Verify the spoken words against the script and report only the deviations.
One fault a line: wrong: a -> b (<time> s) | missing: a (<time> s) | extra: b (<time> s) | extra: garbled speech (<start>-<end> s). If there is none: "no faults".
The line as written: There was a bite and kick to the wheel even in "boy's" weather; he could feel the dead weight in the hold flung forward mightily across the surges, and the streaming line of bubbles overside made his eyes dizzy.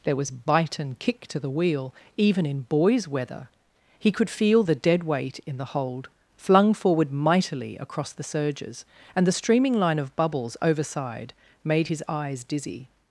missing: a (0.3 s)